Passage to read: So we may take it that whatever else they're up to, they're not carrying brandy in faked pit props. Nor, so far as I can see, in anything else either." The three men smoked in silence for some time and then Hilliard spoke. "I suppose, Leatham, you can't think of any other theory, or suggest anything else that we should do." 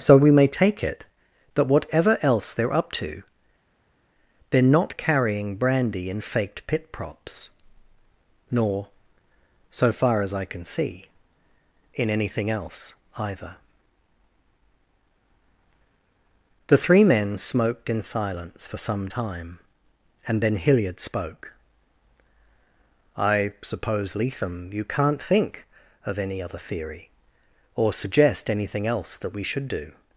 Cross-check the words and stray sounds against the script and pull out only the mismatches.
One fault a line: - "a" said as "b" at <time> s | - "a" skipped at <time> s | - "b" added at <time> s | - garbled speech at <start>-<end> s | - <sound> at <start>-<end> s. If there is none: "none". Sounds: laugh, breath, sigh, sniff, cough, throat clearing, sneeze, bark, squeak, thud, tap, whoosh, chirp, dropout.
none